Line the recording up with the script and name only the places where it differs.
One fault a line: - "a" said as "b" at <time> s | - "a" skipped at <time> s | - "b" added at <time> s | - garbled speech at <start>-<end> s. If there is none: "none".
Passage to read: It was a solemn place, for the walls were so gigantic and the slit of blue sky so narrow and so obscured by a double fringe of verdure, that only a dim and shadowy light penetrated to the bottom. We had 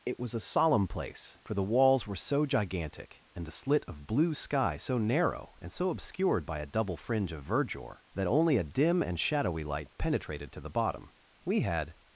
none